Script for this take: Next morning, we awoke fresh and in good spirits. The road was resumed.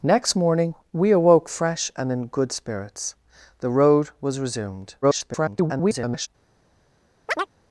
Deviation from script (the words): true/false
true